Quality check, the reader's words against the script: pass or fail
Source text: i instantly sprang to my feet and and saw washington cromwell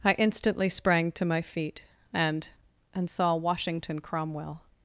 pass